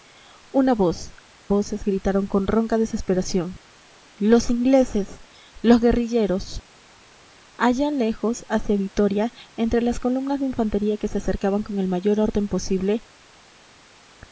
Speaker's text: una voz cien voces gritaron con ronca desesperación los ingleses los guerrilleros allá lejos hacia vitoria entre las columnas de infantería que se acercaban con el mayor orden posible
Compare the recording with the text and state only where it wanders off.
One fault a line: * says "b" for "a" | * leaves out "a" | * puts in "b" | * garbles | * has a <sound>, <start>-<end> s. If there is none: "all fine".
* leaves out "cien"